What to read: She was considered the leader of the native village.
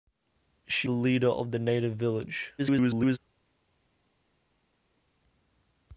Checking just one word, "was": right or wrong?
wrong